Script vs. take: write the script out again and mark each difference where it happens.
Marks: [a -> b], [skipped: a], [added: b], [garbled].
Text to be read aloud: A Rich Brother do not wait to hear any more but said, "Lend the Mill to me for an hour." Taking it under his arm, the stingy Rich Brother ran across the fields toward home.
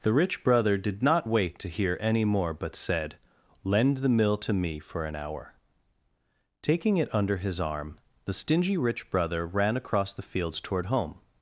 [A -> The] Rich Brother [do -> did] not wait to hear any more but said, "Lend the Mill to me for an hour." Taking it under his arm, the stingy Rich Brother ran across the fields toward home.